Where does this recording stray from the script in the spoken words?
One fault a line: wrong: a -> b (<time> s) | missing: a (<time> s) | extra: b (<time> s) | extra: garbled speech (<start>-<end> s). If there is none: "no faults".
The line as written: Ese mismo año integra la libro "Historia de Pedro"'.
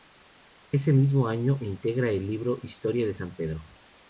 wrong: la -> el (2.1 s)
extra: San (3.2 s)